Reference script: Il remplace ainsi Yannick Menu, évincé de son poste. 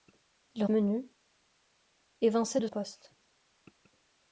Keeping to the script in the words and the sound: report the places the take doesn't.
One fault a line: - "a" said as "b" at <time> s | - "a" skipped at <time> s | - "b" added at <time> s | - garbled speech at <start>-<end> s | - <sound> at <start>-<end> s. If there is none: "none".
- "remplace ainsi Yannick" skipped at 0.7 s
- "son" skipped at 2.7 s